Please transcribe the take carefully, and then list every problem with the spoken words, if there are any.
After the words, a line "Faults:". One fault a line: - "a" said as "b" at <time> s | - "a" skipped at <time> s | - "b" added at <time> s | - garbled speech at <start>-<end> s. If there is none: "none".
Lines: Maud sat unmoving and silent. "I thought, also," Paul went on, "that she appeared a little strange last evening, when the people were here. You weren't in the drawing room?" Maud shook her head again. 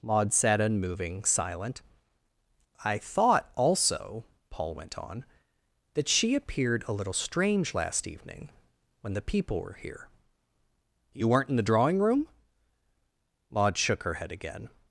Maud sat unmoving silent. "I thought, also," Paul went on, "that she appeared a little strange last evening, when the people were here. You weren't in the drawing room?" Maud shook her head again.
Faults:
- "and" skipped at 1.2 s